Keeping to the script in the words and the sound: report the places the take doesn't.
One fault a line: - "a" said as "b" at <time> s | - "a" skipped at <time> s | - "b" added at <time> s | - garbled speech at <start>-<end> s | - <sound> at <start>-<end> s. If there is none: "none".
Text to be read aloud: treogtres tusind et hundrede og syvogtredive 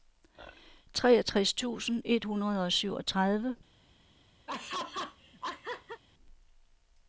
- laugh at 4.5-6.0 s